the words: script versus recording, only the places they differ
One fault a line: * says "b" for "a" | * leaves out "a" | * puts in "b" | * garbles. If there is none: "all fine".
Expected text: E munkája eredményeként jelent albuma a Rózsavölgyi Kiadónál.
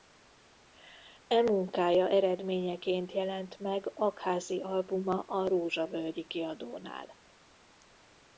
* puts in "meg Aggházy"